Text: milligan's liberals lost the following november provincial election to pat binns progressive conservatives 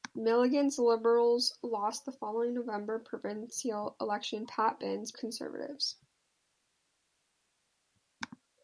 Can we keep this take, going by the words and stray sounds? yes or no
no